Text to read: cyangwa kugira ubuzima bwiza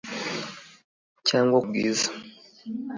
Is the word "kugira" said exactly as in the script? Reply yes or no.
no